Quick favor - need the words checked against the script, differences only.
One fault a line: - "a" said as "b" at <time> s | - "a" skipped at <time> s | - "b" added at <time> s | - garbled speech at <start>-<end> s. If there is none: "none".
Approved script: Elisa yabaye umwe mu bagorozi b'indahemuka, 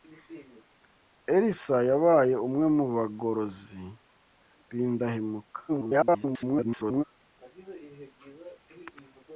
- garbled speech at 5.7-7.0 s